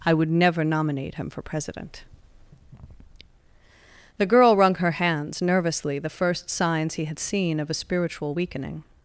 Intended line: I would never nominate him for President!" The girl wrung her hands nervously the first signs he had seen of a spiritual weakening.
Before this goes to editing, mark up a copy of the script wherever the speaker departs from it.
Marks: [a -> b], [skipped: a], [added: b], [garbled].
I would never nominate him for President!" The girl wrung her hands nervously the first signs he had seen of a spiritual weakening.